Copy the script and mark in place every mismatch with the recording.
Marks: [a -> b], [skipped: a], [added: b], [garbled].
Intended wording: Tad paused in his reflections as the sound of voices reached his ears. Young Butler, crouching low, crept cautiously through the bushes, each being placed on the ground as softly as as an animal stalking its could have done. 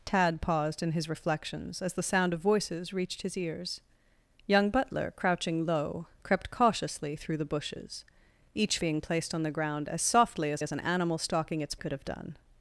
Tad paused in his reflections as the sound of voices reached his ears. Young Butler, crouching low, crept cautiously through the bushes, each being placed on the ground as softly as as an animal stalking its could have done.